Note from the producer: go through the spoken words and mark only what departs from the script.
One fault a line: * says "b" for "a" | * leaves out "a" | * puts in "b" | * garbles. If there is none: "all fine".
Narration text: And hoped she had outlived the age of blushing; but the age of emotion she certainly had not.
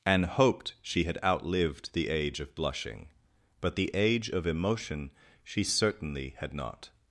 all fine